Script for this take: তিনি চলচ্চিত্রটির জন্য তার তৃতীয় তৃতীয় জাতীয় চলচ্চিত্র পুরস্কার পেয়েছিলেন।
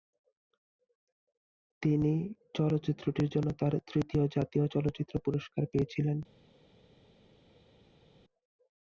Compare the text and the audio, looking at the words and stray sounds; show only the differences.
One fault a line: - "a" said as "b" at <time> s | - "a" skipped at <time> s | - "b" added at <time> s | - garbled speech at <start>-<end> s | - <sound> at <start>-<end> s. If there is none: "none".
- "তৃতীয়" skipped at 4.2 s